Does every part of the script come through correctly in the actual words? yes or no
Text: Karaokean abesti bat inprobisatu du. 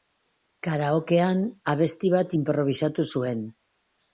no